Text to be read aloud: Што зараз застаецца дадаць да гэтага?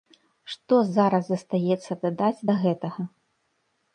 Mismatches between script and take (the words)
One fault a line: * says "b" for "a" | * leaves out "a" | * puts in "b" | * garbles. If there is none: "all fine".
all fine